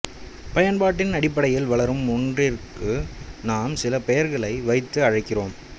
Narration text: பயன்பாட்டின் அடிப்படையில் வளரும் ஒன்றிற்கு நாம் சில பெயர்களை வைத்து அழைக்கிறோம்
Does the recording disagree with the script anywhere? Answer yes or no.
no